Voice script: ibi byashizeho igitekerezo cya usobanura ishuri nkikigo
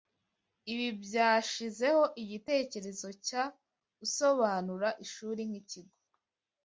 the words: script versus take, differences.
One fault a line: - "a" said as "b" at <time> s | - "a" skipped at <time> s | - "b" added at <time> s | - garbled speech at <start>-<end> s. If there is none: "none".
none